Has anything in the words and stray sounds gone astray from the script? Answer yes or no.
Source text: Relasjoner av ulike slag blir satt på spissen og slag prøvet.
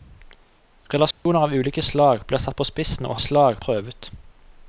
yes